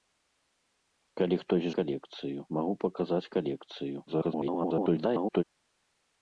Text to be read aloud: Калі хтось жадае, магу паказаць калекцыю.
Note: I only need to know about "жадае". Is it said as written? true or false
false